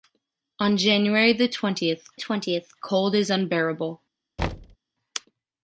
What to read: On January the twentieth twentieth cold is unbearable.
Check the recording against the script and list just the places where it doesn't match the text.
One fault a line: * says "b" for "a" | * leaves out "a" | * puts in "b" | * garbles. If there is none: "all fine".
all fine